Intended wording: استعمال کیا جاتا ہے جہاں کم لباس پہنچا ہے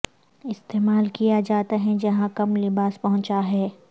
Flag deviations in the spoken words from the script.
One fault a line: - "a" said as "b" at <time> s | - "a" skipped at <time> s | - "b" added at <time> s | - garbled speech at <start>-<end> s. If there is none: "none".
none